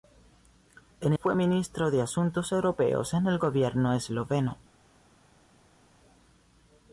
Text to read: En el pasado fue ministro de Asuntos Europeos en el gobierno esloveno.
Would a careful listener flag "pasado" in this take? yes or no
yes